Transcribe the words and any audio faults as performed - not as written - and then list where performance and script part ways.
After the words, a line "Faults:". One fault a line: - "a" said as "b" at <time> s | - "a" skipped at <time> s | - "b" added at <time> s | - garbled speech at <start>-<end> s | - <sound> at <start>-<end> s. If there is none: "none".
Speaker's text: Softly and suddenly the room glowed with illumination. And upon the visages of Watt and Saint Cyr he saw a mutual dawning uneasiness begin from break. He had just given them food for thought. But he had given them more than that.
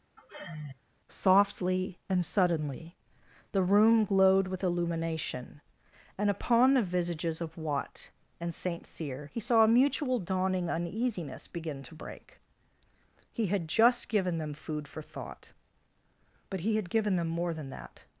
Softly and suddenly the room glowed with illumination. And upon the visages of Watt and Saint Cyr he saw a mutual dawning uneasiness begin to break. He had just given them food for thought. But he had given them more than that.
Faults:
- sigh at 0.2-0.8 s
- "from" said as "to" at 11.8 s